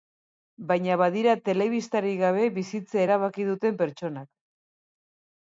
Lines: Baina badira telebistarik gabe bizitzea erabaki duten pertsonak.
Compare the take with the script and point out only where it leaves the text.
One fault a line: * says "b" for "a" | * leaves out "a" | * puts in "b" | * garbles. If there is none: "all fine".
all fine